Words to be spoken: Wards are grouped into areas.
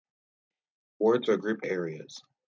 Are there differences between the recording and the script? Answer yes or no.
yes